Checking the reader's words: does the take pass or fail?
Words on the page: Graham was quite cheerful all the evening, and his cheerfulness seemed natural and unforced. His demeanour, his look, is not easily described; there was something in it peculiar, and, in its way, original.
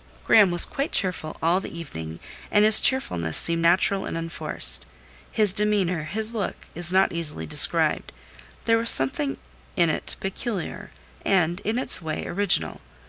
pass